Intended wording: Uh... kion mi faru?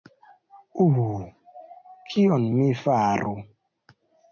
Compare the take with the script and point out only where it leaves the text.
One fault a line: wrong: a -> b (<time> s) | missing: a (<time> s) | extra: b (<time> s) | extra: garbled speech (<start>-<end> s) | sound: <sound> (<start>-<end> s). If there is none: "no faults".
no faults